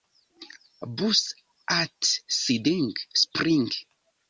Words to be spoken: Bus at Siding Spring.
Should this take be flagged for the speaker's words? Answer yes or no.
no